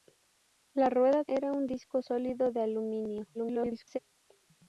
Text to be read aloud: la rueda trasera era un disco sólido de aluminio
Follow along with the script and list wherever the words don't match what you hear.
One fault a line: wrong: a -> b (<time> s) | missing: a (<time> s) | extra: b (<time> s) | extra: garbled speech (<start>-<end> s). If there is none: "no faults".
missing: trasera (1.2 s)
extra: garbled speech (3.3-4.0 s)